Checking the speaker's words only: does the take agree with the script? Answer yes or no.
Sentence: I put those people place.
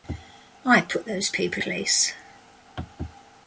yes